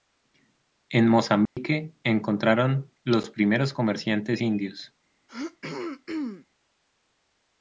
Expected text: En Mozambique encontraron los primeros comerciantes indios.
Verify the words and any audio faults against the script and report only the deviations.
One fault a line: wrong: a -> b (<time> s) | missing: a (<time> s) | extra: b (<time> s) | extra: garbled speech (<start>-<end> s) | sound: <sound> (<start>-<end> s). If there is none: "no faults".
sound: dropout (1.5-1.6 s)
sound: throat clearing (5.3-6.5 s)